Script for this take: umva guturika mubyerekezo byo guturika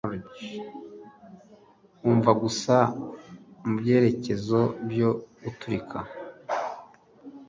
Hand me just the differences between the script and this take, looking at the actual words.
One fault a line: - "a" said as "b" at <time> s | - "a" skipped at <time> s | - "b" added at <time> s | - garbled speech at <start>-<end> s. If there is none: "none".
- "guturika" said as "gusa" at 2.4 s